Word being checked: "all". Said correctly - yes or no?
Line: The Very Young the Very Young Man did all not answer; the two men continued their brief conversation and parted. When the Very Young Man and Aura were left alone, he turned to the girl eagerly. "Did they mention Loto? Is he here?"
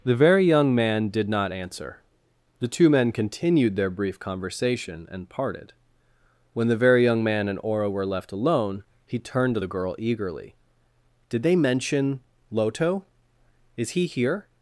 no